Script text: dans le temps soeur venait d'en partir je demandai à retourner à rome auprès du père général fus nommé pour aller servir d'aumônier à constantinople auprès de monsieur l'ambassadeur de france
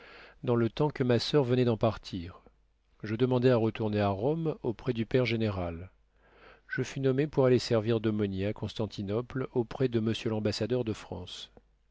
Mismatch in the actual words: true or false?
true